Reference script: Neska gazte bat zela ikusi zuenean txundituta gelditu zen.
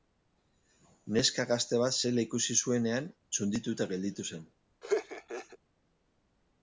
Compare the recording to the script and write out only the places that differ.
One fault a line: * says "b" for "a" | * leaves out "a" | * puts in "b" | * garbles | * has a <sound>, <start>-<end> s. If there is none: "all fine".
* has a laugh, 4.8-5.6 s